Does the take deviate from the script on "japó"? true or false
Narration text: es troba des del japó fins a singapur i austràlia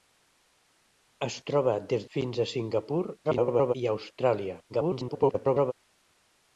true